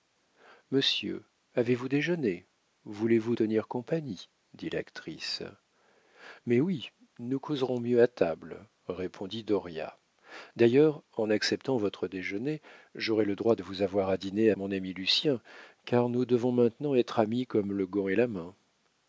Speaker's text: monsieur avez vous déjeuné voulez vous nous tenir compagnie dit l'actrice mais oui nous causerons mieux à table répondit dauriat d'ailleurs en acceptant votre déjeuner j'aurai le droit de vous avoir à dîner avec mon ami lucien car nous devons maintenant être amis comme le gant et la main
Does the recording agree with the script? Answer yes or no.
no